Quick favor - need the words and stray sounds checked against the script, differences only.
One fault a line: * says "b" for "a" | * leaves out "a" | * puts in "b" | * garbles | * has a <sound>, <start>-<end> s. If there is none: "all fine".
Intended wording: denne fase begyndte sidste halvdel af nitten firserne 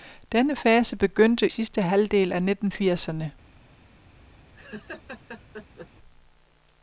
* has a laugh, 4.5-5.9 s